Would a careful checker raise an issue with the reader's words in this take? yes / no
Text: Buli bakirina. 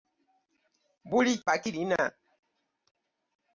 no